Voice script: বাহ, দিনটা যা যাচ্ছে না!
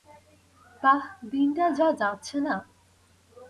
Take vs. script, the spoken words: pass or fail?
pass